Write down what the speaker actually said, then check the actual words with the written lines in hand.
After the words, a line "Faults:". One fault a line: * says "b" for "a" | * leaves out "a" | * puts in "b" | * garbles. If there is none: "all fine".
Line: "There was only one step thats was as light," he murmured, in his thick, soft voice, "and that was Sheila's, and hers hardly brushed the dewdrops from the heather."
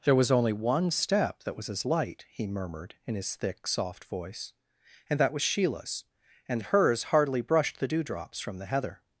"There was only one step that was as light," he murmured, in his thick, soft voice, "and that was Sheila's, and hers hardly brushed the dewdrops from the heather."
Faults:
* says "that" for "thats"